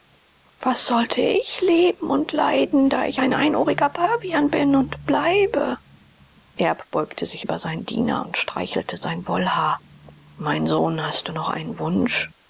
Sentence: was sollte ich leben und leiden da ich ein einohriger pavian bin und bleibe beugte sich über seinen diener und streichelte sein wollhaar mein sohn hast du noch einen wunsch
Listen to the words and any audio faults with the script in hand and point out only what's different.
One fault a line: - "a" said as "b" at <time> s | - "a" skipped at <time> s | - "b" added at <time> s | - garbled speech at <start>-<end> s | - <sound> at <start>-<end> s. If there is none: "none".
- "erb" added at 6.5 s